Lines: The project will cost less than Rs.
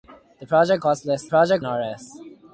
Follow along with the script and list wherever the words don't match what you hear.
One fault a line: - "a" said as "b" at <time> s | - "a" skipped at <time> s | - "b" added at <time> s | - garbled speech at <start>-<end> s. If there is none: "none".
- "will" skipped at 0.8 s
- "than" said as "project" at 1.3 s